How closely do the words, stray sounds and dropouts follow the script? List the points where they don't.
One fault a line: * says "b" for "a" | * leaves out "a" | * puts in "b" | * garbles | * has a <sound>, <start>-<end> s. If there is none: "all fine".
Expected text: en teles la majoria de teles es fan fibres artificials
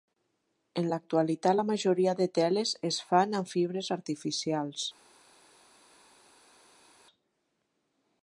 * says "l'actualitat" for "teles"
* puts in "amb"